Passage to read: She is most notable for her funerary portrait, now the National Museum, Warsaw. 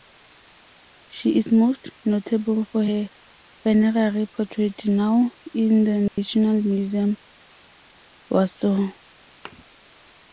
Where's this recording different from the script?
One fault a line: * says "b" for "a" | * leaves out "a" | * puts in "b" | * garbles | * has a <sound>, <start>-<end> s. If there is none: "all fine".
* puts in "in"
* has a dropout, 6.1-6.2 s
* has a thud, 9.5-9.6 s